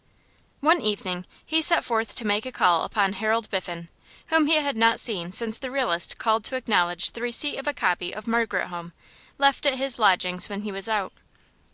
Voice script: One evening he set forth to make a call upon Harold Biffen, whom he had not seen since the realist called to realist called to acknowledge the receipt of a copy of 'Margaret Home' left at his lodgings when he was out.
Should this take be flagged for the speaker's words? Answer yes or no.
yes